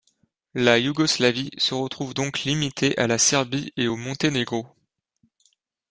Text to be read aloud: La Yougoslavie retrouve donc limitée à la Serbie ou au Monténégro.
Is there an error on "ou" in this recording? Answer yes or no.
yes